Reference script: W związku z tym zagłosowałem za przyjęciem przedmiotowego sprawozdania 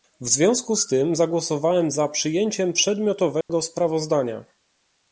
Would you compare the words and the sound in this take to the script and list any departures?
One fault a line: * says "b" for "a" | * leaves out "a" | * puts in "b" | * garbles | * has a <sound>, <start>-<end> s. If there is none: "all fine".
* has a dropout, 3.4-3.5 s